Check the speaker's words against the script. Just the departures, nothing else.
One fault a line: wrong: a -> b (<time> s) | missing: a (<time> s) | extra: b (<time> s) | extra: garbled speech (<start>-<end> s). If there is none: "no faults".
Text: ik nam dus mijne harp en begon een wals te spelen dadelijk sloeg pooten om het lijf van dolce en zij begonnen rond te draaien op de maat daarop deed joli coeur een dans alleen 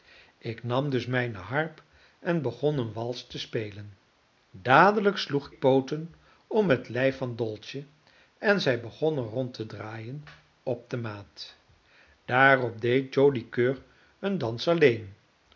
no faults